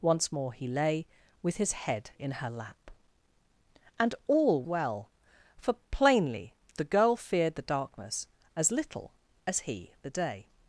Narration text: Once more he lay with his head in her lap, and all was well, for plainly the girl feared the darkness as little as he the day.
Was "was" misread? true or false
true